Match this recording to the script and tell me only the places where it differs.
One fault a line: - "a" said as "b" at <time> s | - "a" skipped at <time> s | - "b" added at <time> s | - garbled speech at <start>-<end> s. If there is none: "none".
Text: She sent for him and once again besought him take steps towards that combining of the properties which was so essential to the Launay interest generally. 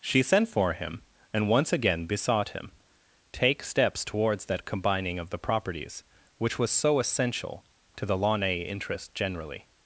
none